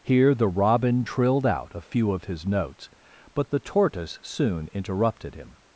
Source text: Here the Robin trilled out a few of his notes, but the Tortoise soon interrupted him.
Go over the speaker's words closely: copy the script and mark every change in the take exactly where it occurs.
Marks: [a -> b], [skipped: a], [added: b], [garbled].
Here the Robin trilled out a few of his notes, but the Tortoise soon interrupted him.